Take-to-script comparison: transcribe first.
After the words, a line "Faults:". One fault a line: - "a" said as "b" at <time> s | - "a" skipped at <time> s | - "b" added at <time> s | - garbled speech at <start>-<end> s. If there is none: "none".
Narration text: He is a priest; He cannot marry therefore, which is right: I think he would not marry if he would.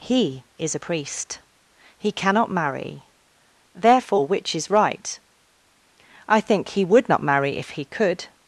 He is a priest; He cannot marry therefore, which is right: I think he would not marry if he could.
Faults:
- "would" said as "could" at 7.8 s